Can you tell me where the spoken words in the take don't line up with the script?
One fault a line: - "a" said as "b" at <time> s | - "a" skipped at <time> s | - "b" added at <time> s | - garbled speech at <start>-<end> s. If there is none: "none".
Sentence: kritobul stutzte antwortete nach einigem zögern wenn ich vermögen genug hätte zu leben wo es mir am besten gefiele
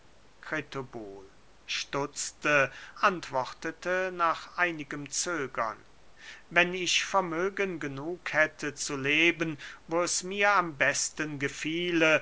none